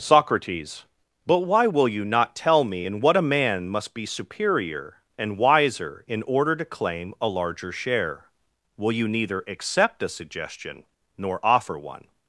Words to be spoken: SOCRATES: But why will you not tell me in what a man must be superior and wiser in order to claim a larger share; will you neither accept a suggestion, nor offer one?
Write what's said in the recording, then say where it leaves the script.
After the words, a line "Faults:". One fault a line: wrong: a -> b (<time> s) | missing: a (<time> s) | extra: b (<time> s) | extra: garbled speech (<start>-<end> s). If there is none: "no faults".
SOCRATES: But why will you not tell me in what a man must be superior and wiser in order to claim a larger share; will you neither accept a suggestion, nor offer one?
Faults:
no faults